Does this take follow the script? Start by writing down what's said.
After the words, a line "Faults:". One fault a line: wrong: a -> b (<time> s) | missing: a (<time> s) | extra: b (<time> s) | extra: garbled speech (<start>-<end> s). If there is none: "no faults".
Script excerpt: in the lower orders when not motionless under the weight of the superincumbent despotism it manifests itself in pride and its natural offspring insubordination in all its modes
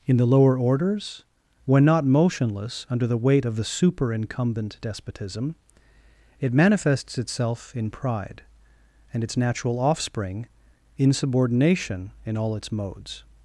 in the lower orders when not motionless under the weight of the superincumbent despotism it manifests itself in pride and its natural offspring insubordination in all its modes
Faults:
no faults